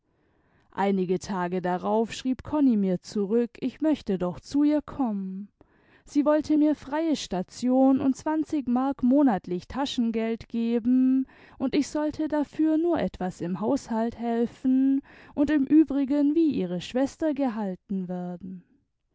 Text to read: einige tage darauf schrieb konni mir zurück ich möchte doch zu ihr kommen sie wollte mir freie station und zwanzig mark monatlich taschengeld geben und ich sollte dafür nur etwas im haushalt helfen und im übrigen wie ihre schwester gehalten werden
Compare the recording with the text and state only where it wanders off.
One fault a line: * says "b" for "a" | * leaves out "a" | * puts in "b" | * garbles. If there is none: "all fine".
all fine